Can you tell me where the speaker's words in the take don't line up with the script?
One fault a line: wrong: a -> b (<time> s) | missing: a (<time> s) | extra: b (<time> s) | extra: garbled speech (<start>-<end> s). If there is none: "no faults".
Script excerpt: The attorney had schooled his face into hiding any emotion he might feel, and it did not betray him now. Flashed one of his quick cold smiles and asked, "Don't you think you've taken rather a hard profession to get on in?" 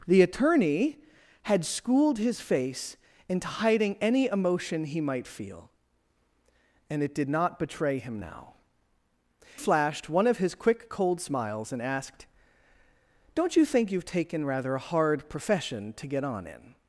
no faults